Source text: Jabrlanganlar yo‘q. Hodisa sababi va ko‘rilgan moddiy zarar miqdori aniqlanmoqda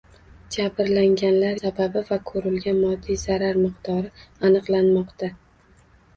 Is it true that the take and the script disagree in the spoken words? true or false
true